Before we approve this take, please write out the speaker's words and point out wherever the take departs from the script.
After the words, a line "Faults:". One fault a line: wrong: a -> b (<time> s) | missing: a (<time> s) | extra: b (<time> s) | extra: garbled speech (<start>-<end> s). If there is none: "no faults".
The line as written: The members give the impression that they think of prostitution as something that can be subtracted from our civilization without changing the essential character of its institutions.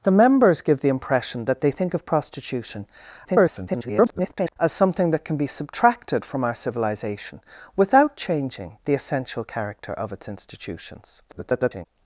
The members give the impression that they think of prostitution [garbled] as something that can be subtracted from our civilization without changing the essential character of its institutions. [garbled]
Faults:
extra: garbled speech (3.2-4.6 s)
extra: garbled speech (11.3-11.9 s)